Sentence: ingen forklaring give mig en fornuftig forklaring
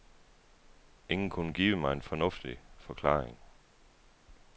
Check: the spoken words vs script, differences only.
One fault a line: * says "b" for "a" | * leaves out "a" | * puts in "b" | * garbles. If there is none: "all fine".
* says "kunne" for "forklaring"